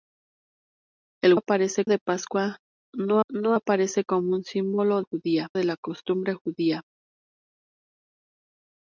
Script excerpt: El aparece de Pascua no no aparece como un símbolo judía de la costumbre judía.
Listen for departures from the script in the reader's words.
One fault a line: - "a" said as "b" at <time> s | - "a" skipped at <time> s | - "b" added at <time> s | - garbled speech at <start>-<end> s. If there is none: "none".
none